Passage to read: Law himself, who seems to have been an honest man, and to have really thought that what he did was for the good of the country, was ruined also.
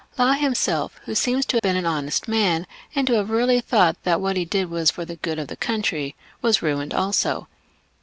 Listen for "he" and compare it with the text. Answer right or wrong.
right